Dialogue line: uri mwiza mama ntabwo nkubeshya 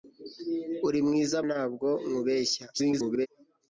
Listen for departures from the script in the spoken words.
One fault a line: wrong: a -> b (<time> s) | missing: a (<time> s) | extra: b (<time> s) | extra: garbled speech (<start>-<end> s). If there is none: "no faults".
missing: mama (1.4 s)
extra: garbled speech (2.7-3.3 s)